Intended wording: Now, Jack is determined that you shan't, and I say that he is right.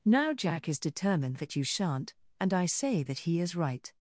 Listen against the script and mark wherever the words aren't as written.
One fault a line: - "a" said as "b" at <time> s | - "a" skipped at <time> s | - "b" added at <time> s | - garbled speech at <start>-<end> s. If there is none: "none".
none